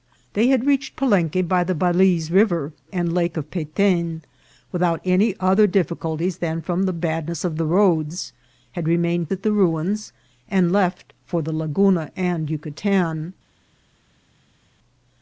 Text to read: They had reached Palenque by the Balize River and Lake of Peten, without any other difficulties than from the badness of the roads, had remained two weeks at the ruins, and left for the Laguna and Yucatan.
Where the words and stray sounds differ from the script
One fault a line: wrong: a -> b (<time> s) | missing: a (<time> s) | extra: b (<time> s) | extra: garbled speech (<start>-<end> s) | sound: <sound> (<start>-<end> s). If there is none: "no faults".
missing: two weeks (9.3 s)